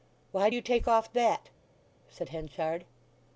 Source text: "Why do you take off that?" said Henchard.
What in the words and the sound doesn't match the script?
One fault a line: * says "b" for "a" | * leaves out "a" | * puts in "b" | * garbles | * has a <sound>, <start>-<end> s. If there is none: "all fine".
all fine